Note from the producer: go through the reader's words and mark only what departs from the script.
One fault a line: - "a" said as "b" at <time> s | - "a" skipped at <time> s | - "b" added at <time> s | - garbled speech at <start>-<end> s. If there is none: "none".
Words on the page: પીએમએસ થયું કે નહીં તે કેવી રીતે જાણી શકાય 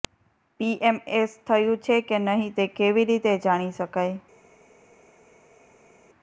- "છે" added at 1.8 s